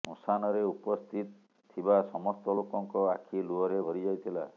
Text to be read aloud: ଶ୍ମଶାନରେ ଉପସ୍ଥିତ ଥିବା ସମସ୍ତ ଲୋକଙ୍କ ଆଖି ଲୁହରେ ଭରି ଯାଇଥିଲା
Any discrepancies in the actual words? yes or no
no